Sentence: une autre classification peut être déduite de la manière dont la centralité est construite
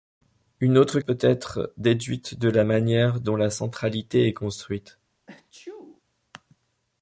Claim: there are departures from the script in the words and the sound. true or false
true